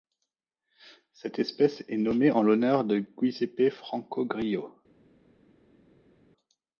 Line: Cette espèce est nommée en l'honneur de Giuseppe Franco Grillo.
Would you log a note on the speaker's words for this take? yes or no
no